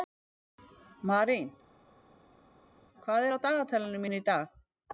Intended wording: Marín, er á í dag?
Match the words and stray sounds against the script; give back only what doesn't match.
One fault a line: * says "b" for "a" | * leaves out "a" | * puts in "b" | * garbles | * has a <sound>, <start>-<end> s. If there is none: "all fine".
* puts in "hvað"
* puts in "dagatalinu mínu"